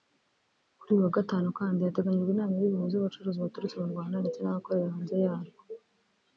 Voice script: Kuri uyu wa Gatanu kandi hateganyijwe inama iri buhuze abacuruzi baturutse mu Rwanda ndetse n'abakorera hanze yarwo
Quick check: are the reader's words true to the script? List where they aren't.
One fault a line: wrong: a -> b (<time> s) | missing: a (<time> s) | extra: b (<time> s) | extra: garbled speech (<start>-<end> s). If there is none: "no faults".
no faults